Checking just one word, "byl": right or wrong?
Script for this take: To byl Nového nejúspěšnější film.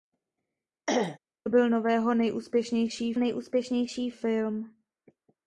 right